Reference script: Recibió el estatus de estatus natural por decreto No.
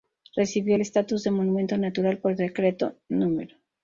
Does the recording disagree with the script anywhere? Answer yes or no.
yes